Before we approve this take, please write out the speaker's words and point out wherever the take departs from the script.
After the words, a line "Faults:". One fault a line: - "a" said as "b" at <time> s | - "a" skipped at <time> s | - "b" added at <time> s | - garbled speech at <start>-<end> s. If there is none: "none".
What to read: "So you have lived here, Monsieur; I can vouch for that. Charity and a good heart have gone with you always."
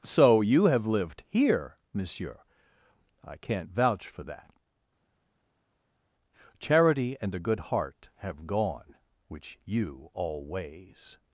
"So you have lived here, Monsieur; I can't vouch for that. Charity and a good heart have gone which you always."
Faults:
- "can" said as "can't" at 3.4 s
- "with" said as "which" at 9.3 s